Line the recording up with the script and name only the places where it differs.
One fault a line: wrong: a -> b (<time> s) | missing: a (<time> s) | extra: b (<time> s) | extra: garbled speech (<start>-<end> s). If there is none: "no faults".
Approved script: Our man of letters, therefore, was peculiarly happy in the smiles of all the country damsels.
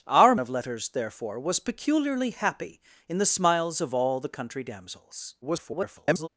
missing: man (0.3 s)
extra: garbled speech (5.4-6.3 s)